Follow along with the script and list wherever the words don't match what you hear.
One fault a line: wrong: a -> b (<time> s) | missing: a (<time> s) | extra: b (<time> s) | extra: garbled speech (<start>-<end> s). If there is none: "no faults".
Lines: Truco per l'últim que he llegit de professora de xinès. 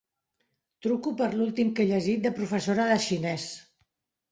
no faults